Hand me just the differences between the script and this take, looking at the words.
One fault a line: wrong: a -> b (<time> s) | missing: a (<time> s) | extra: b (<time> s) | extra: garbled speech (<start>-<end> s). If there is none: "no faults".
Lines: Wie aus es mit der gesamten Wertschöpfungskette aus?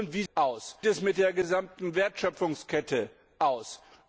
no faults